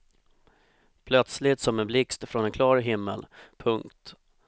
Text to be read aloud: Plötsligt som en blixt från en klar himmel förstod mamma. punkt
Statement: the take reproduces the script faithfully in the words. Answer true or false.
false